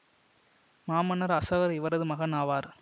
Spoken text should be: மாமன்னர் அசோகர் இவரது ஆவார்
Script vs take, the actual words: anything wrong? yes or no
yes